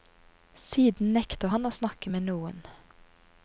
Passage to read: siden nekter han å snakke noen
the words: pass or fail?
fail